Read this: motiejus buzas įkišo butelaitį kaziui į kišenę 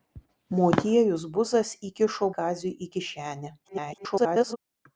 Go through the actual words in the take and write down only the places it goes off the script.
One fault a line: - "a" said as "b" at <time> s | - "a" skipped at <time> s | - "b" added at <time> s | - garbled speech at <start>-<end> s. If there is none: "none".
- "butelaitį" skipped at 2.3 s
- garbled speech at 3.6-4.6 s